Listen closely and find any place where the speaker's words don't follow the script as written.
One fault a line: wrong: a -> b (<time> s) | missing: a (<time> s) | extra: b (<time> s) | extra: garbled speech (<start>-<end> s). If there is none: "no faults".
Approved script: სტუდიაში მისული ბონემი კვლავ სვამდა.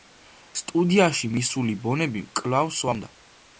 no faults